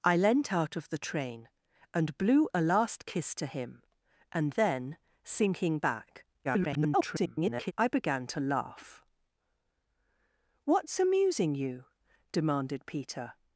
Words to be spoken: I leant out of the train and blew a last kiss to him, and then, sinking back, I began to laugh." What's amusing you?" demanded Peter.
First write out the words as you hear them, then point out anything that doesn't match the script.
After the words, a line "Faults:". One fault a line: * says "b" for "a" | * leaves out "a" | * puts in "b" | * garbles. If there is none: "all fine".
I leant out of the train and blew a last kiss to him, and then, sinking back, [garbled] I began to laugh." What's amusing you?" demanded Peter.
Faults:
* garbles